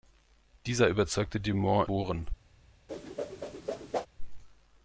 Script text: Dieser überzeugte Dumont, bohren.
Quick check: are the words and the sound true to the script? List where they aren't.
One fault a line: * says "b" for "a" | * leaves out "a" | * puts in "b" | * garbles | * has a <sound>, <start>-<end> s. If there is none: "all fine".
* has a whoosh, 2.9-4.1 s